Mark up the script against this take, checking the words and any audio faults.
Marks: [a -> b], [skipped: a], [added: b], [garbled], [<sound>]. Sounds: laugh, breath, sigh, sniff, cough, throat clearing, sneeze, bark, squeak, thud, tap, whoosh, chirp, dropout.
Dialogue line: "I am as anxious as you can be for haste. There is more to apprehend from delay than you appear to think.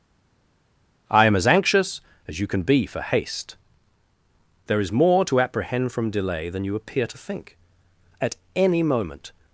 "I am as anxious as you can be for haste. There is more to apprehend from delay than you appear to think. [added: At any moment]